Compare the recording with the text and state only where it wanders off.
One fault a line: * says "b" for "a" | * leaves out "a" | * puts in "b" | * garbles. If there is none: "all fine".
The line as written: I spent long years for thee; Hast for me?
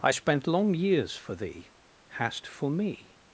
all fine